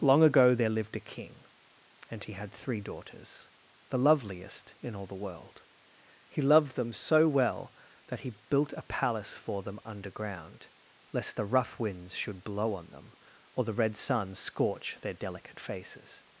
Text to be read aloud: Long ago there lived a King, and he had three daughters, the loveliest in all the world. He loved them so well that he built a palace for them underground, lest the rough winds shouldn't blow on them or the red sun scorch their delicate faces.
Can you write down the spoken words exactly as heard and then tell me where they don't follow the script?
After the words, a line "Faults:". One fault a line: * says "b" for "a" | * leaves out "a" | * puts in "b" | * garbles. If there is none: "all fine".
Long ago there lived a King, and he had three daughters, the loveliest in all the world. He loved them so well that he built a palace for them underground, lest the rough winds should blow on them or the red sun scorch their delicate faces.
Faults:
* says "should" for "shouldn't"